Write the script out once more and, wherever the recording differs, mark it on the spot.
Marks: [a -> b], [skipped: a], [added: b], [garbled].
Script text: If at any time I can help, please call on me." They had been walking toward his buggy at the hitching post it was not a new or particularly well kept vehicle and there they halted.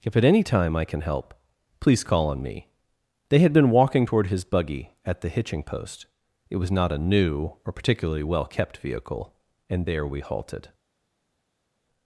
If at any time I can help, please call on me." They had been walking toward his buggy at the hitching post it was not a new or particularly well kept vehicle and there [they -> we] halted.